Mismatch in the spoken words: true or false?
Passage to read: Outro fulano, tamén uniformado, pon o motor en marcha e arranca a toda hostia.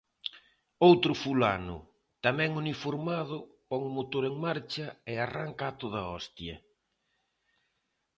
false